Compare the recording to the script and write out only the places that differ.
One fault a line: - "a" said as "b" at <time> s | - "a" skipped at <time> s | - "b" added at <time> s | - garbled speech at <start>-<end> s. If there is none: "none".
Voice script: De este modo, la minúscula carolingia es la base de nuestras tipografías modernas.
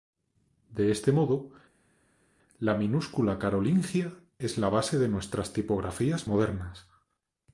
none